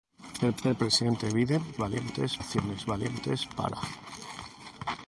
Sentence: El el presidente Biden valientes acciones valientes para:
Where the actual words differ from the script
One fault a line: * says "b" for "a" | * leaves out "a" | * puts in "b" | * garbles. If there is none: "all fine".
all fine